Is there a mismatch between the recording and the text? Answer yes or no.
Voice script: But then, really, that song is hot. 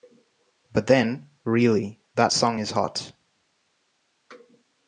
no